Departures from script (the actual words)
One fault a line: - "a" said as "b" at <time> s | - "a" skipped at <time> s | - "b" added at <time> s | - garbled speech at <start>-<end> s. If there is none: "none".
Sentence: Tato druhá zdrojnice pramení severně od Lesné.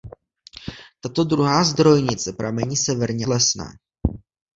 - "od" skipped at 3.3 s